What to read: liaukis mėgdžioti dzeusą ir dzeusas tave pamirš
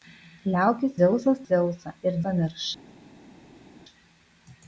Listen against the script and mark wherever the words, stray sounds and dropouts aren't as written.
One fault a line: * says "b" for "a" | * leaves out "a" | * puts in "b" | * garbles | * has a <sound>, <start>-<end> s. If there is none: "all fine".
* says "dzeusas" for "mėgdžioti"
* leaves out "dzeusas tave"